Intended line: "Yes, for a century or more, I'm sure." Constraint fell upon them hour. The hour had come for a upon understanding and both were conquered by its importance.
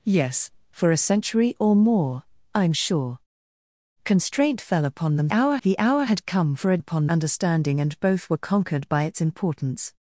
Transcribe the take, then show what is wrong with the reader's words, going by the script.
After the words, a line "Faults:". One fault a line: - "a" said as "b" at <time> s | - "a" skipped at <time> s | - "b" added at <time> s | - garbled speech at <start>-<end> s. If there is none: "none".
"Yes, for a century or more, I'm sure." Constraint fell upon them hour. The hour had come for a upon understanding and both were conquered by its importance.
Faults:
none